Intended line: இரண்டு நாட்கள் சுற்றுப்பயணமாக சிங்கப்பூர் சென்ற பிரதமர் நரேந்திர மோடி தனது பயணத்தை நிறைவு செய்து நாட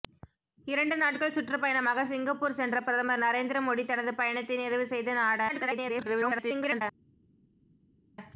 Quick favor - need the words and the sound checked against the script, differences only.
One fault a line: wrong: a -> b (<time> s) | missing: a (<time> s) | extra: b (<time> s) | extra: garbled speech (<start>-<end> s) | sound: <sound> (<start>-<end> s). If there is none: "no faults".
extra: garbled speech (5.5-6.8 s)